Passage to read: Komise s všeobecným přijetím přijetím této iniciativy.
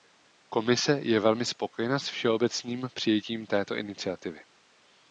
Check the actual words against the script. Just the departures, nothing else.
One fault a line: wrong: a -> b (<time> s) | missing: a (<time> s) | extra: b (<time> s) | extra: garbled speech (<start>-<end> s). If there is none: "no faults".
extra: je velmi spokojena (1.0 s)
missing: přijetím (3.5 s)